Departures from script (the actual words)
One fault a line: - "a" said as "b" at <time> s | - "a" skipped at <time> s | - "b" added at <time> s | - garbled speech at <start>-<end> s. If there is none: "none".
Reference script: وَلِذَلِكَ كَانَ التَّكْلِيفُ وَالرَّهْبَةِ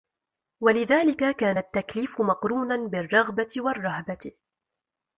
- "مَقْرُونًا بِالرَّغْبَةِ" added at 2.2 s